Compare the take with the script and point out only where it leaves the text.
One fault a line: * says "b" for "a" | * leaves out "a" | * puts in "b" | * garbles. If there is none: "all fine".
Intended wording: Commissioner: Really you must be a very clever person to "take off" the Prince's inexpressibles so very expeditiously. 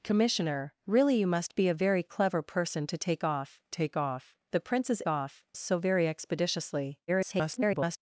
* puts in "take off"
* says "off" for "inexpressibles"
* garbles